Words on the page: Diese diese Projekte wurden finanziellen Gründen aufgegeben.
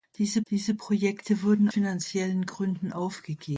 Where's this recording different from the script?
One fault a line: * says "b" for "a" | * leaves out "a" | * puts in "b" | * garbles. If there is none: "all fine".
all fine